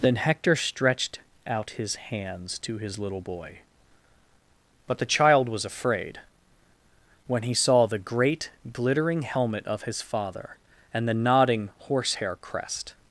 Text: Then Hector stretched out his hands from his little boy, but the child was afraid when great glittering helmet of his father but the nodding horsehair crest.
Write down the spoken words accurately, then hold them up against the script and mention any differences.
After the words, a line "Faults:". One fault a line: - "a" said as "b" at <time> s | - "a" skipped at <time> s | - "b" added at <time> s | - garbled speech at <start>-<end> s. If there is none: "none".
Then Hector stretched out his hands to his little boy, but the child was afraid when he saw the great glittering helmet of his father and the nodding horsehair crest.
Faults:
- "from" said as "to" at 2.6 s
- "he saw the" added at 7.4 s
- "but" said as "and" at 10.9 s